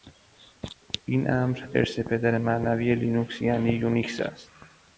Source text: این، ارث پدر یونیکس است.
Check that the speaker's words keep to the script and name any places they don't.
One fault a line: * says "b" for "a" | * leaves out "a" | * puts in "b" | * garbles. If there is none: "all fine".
* puts in "امر"
* puts in "معنوی لینوکس یعنی"